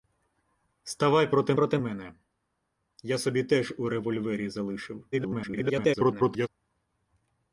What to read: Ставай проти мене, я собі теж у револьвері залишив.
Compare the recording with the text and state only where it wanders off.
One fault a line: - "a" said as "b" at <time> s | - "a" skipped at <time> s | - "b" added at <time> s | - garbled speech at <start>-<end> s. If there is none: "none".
- "проти" added at 1.5 s
- garbled speech at 5.1-6.5 s